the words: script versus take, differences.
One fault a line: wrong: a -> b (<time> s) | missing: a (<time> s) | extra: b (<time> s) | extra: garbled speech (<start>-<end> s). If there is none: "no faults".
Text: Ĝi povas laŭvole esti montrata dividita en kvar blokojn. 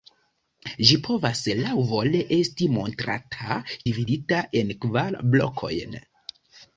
no faults